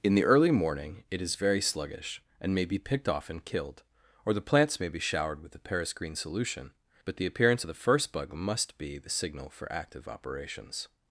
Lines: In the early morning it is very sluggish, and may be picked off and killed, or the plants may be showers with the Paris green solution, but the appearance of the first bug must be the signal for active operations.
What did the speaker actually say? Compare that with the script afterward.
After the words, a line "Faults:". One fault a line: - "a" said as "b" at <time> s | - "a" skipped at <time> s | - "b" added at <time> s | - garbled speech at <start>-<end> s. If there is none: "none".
In the early morning it is very sluggish, and may be picked off and killed, or the plants may be showered with the Paris green solution, but the appearance of the first bug must be the signal for active operations.
Faults:
- "showers" said as "showered" at 5.0 s